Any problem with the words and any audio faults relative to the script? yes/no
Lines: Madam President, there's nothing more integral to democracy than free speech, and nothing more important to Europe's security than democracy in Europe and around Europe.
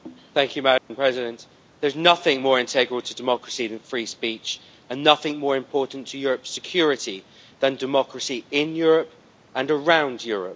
yes